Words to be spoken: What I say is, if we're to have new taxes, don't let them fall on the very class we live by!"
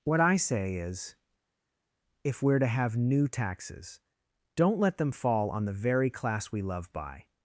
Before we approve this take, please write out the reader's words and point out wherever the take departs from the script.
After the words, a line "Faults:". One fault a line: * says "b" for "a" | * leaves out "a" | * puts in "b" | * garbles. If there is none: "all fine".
What I say is, if we're to have new taxes, don't let them fall on the very class we love by!"
Faults:
* says "love" for "live"